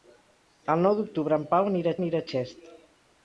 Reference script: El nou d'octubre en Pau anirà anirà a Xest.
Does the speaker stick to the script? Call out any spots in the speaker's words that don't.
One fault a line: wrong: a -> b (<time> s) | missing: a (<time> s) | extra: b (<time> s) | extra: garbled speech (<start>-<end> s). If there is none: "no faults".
no faults